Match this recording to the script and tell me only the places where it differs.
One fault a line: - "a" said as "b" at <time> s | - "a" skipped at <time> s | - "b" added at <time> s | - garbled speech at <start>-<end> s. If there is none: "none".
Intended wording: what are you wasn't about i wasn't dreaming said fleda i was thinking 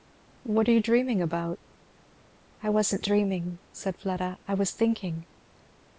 - "wasn't" said as "dreaming" at 0.8 s